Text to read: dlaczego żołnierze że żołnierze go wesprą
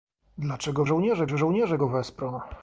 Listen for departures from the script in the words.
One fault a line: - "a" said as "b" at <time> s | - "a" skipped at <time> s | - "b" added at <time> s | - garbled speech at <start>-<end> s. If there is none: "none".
none